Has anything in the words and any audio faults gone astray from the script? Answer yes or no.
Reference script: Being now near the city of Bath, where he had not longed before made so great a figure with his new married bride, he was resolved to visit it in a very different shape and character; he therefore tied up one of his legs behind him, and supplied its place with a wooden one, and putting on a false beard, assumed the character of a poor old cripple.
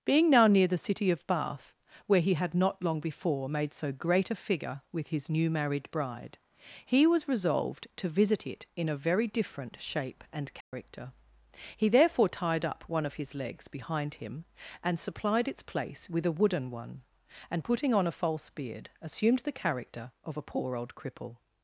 yes